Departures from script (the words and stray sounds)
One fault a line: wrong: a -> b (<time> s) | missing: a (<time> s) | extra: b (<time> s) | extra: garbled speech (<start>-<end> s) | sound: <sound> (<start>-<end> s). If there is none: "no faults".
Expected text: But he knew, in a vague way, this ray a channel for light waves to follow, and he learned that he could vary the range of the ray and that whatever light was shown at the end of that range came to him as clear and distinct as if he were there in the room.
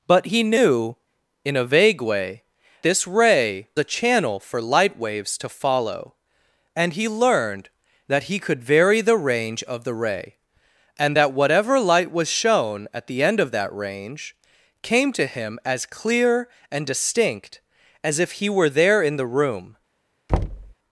sound: thud (20.3-20.7 s)